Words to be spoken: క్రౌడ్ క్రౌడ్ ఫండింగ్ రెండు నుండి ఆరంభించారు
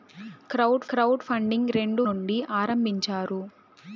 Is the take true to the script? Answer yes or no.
yes